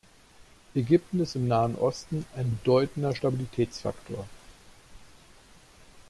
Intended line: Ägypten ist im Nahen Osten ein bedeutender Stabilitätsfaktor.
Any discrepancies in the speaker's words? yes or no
no